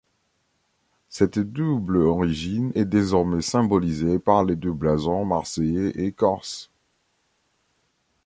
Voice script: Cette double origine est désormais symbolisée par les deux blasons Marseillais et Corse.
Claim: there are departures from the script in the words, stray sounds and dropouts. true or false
false